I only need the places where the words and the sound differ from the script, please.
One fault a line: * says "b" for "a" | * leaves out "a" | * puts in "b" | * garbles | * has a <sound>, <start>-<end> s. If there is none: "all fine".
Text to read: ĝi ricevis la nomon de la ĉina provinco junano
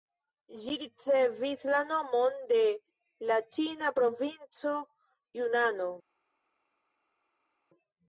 all fine